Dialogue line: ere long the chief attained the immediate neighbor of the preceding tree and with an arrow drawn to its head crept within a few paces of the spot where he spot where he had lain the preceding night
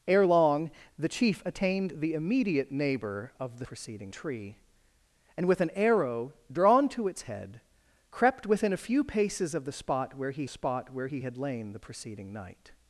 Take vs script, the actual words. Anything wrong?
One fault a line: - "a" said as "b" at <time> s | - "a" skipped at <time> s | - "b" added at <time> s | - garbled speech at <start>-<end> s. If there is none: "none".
none